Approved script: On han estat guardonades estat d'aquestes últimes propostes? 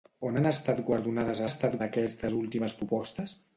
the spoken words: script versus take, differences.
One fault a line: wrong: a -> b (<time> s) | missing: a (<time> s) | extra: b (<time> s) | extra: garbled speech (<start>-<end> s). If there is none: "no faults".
no faults